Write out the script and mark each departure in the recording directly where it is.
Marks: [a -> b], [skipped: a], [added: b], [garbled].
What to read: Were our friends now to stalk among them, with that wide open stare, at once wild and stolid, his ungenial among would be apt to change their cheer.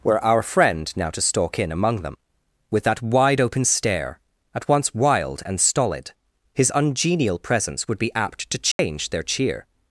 Were our [friends -> friend] now to stalk [added: in] among them, with that wide open stare, at once wild and stolid, his ungenial [among -> presence] would be apt to change their cheer.